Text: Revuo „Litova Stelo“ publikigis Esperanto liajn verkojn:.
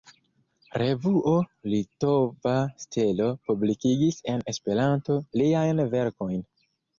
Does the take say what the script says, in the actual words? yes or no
no